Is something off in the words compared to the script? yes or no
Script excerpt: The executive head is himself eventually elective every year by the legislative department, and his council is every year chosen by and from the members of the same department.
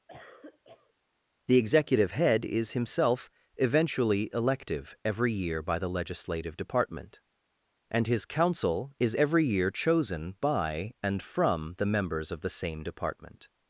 no